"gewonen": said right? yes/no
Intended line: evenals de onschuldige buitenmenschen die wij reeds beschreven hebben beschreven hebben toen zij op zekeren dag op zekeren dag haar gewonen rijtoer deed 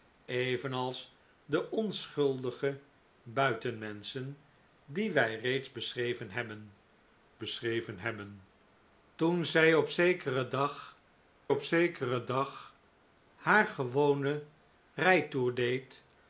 yes